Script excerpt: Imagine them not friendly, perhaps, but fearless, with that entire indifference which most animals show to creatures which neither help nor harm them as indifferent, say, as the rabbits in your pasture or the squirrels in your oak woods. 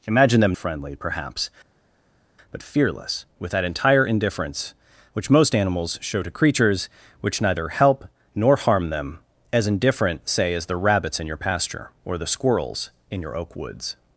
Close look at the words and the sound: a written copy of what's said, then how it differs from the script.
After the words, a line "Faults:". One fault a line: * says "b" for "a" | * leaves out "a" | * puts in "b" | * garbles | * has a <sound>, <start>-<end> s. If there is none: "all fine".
Imagine them friendly, perhaps, but fearless, with that entire indifference which most animals show to creatures which neither help nor harm them as indifferent, say, as the rabbits in your pasture or the squirrels in your oak woods.
Faults:
* leaves out "not"